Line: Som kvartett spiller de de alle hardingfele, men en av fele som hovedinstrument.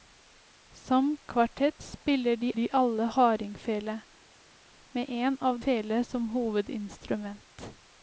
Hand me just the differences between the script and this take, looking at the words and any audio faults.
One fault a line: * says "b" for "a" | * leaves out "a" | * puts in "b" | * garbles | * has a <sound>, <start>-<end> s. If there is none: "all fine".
all fine